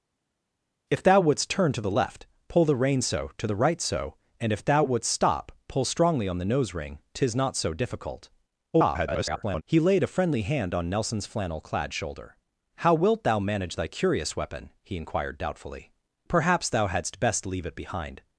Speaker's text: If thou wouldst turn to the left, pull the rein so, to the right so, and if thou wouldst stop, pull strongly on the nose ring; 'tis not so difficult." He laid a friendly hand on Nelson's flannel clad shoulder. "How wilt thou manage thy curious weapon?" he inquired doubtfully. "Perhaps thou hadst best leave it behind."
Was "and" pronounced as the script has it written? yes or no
yes